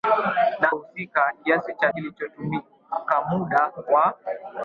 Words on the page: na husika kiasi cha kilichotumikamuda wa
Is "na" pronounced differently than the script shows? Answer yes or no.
no